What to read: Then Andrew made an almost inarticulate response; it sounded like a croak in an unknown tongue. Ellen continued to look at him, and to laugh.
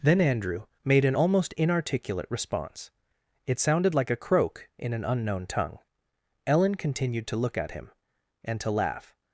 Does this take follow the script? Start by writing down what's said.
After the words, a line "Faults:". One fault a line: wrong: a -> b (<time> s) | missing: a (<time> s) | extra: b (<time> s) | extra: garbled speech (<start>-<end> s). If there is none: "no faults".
Then Andrew made an almost inarticulate response; it sounded like a croak in an unknown tongue. Ellen continued to look at him, and to laugh.
Faults:
no faults